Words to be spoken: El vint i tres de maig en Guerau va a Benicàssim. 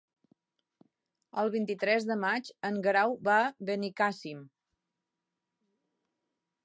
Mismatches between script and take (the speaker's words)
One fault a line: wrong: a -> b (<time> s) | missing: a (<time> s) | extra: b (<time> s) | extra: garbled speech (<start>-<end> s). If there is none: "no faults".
no faults